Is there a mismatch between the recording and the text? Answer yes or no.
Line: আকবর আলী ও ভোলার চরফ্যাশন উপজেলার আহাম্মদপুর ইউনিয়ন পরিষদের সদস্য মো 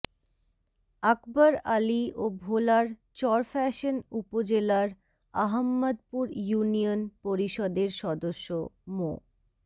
no